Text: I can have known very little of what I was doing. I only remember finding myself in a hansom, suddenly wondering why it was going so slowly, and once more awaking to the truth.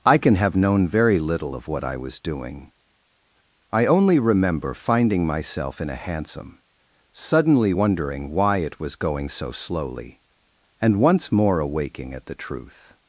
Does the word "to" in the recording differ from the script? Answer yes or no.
yes